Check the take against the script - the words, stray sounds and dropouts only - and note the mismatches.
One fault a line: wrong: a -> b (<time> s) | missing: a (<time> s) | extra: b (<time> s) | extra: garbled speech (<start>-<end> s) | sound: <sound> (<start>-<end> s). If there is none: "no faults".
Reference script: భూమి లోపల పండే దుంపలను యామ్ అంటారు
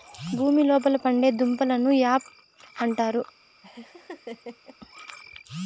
sound: laugh (3.6-4.8 s)